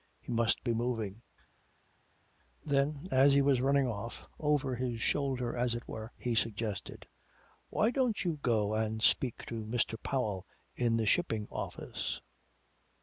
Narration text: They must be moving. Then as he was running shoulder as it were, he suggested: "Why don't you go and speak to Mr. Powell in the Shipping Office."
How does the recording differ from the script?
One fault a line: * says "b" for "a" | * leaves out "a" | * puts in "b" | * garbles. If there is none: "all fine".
* says "He" for "They"
* puts in "off over his"